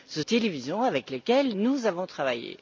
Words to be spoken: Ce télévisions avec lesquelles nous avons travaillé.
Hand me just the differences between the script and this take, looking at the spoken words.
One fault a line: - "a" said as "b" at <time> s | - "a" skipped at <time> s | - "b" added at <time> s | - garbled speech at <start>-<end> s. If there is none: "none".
none